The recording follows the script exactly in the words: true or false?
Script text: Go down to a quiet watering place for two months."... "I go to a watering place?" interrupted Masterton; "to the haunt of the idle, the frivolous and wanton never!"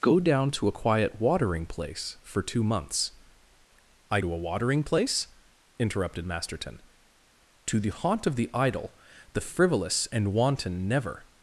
false